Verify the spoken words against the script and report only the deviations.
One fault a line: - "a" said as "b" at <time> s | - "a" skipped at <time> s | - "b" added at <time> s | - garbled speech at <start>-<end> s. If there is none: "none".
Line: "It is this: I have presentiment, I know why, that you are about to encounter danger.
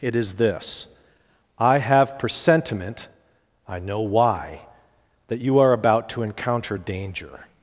none